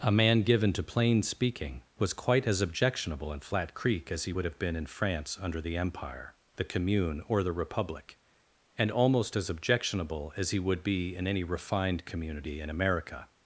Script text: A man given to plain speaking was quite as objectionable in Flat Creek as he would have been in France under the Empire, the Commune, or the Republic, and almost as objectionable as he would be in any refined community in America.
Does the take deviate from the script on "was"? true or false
false